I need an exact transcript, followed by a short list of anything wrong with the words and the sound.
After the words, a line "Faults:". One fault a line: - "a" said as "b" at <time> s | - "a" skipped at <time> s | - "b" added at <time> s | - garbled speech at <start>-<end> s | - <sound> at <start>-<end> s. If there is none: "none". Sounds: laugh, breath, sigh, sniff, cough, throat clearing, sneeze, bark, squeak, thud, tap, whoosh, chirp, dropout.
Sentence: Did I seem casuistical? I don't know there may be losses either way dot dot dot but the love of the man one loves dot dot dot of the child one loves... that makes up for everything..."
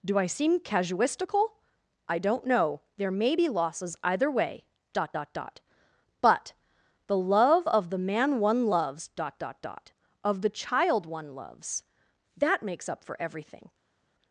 Do I seem casuistical? I don't know there may be losses either way dot dot dot but the love of the man one loves dot dot dot of the child one loves... that makes up for everything..."
Faults:
- "Did" said as "Do" at 0.0 s